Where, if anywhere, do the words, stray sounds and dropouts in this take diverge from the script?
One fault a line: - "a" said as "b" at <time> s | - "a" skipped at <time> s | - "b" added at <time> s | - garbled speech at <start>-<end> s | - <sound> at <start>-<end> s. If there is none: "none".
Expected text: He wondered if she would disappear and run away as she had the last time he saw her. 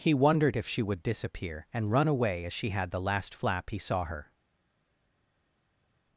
- "time" said as "flap" at 3.3 s